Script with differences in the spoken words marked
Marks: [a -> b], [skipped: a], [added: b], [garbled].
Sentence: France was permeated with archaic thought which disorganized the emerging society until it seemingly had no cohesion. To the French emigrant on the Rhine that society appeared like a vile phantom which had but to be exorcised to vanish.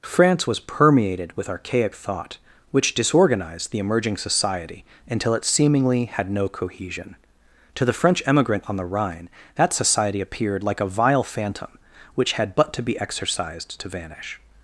France was permeated with archaic thought which disorganized the emerging society until it seemingly had no cohesion. To the French emigrant on the Rhine that society appeared like a vile phantom which had but to be exorcised to vanish.